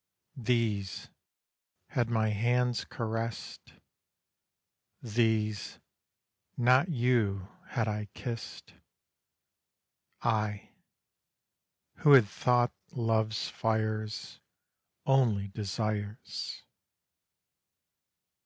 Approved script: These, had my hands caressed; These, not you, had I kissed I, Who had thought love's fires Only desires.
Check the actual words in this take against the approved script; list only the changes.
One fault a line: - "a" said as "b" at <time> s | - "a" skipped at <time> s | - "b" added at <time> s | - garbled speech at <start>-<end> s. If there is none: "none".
none